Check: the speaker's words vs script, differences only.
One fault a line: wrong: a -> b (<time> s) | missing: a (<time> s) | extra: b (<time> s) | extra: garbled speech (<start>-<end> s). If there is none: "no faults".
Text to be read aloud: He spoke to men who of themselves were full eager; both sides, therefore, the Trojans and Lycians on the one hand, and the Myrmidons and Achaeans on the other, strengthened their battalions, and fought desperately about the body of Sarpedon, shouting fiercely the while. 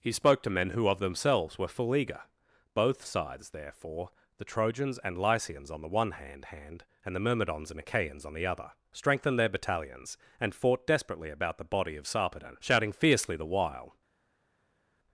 extra: hand (6.5 s)